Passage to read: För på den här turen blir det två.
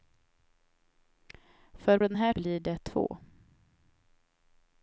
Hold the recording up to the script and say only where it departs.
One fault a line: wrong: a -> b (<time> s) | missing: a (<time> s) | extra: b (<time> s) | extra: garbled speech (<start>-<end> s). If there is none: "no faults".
missing: på (2.0 s)
missing: turen (2.3 s)